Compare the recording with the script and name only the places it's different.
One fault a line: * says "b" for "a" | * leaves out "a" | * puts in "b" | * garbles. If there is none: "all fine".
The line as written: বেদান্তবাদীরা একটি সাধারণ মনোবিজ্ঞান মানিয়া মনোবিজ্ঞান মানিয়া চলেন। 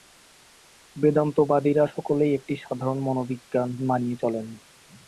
* puts in "সকলেই"
* leaves out "মনোবিজ্ঞান মানিয়া"